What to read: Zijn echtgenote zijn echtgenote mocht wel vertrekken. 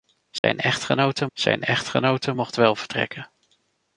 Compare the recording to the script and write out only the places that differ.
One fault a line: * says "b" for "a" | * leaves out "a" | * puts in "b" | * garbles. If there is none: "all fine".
all fine